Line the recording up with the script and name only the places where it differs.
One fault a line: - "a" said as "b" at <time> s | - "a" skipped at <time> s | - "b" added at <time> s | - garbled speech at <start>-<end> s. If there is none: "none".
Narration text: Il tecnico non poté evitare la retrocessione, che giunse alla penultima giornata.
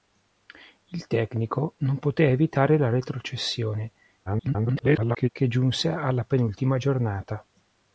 - garbled speech at 4.3-5.3 s